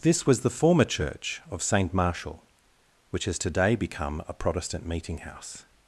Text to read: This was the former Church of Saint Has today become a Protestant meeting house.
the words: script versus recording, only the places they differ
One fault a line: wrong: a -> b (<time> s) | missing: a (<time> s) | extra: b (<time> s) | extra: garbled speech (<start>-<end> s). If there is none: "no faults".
extra: Martial which (1.9 s)